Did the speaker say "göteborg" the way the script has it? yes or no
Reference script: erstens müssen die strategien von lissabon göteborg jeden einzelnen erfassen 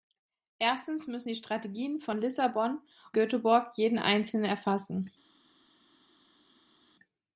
yes